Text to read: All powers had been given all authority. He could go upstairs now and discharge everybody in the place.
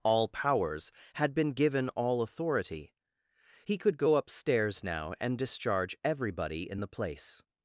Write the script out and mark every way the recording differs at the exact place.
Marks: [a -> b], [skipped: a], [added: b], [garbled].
All powers had been given all authority. He could go upstairs now and discharge everybody in the place.